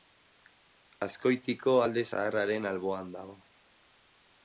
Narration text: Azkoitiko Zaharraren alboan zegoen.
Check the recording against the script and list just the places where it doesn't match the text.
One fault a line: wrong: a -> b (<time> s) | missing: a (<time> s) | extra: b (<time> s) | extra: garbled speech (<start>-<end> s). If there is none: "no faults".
extra: Alde (1.9 s)
wrong: zegoen -> dago (3.2 s)